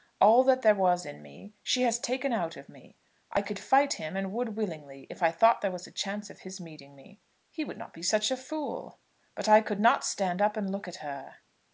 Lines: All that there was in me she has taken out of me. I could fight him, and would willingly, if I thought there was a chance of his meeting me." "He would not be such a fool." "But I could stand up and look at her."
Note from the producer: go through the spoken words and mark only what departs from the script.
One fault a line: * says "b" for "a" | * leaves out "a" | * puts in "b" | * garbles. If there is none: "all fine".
* puts in "not"